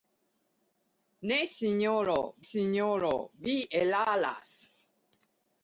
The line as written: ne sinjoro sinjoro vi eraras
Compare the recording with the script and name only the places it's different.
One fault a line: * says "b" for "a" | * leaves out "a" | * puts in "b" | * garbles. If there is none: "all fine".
all fine